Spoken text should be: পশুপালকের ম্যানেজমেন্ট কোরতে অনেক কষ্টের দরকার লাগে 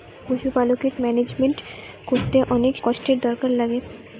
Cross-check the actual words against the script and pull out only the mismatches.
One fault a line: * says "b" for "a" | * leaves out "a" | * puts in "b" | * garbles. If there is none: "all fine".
all fine